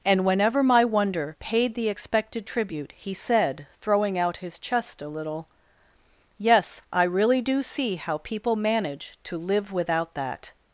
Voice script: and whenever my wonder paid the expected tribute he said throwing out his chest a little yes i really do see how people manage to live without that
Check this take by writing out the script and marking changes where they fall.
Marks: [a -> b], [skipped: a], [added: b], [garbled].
and whenever my wonder paid the expected tribute he said throwing out his chest a little yes i really do see how people manage to live without that